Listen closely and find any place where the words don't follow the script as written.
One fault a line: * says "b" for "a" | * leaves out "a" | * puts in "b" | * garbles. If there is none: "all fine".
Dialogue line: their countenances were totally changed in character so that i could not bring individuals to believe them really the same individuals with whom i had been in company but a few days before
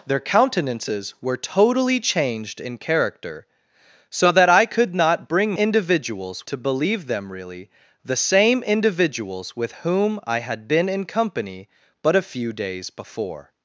all fine